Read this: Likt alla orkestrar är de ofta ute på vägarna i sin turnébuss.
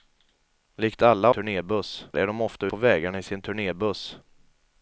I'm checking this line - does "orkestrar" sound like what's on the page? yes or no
no